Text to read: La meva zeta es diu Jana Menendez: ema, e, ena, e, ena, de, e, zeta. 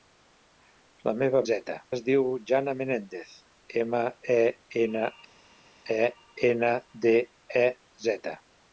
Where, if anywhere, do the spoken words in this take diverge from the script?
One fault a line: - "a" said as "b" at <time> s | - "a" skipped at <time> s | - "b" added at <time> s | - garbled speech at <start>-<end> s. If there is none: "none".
none